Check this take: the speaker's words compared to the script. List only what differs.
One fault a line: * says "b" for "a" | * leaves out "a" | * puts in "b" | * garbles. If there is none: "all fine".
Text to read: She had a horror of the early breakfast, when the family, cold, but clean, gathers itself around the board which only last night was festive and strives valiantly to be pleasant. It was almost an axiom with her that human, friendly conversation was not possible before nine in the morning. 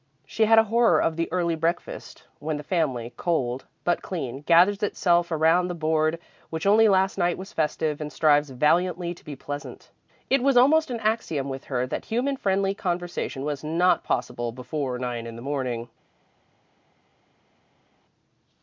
all fine